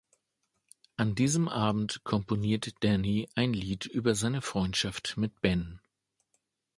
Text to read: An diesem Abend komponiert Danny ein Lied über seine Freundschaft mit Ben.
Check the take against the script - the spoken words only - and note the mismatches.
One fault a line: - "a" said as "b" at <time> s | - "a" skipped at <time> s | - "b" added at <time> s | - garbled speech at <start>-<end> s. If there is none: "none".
none